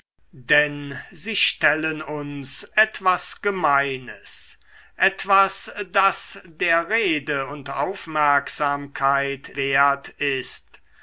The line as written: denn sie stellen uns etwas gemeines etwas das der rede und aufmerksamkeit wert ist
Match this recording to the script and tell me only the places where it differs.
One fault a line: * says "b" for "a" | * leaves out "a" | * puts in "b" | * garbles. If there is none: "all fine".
all fine